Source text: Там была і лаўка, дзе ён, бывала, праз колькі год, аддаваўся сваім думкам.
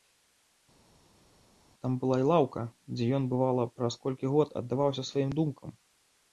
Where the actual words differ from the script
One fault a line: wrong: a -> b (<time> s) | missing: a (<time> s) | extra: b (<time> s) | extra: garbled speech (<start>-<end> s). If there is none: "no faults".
no faults